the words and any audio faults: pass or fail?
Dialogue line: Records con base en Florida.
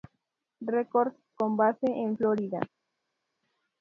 pass